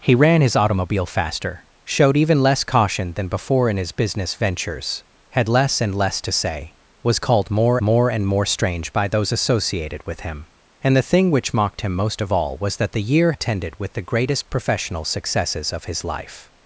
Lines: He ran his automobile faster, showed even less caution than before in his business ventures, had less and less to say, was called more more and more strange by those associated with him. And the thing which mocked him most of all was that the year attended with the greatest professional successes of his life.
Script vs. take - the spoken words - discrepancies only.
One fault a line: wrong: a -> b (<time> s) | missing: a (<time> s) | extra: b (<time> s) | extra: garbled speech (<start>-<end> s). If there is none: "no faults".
no faults